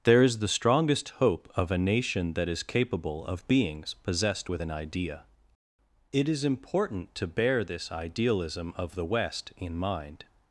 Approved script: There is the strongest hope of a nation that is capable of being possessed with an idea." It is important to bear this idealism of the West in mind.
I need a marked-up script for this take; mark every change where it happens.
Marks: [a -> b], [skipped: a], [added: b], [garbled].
There is the strongest hope of a nation that is capable of [being -> beings] possessed with an idea." It is important to bear this idealism of the West in mind.